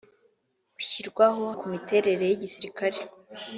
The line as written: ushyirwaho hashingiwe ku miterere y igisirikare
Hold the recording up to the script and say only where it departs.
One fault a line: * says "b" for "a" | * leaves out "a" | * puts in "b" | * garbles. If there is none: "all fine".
* leaves out "hashingiwe"